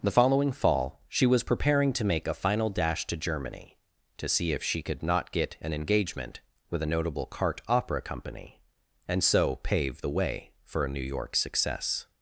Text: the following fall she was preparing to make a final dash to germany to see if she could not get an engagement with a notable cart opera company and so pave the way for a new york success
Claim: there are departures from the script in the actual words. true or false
false